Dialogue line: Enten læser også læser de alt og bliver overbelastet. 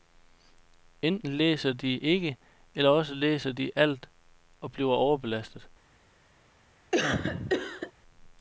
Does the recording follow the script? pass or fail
fail